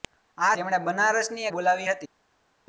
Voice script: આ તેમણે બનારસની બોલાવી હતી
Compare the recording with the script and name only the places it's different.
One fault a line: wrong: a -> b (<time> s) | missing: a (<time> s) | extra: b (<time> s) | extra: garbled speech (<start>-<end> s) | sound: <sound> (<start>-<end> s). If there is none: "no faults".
no faults